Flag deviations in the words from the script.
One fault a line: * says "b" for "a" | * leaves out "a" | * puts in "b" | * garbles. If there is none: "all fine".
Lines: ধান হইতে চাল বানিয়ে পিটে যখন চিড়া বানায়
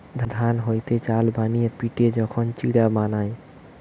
all fine